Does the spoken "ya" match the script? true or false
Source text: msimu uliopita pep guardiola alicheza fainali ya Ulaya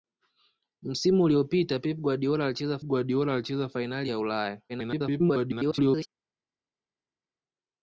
true